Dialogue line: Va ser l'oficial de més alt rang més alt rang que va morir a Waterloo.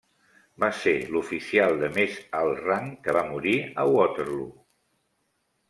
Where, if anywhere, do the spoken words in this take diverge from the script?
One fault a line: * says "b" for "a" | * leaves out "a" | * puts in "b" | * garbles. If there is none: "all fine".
* leaves out "més alt rang"